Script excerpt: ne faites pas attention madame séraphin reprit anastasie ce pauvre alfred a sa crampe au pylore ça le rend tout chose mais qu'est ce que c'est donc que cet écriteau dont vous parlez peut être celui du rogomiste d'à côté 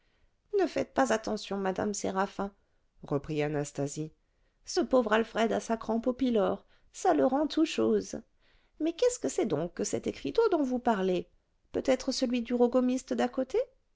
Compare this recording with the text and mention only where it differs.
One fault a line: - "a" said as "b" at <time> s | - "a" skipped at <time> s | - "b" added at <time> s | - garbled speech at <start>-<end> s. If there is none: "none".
none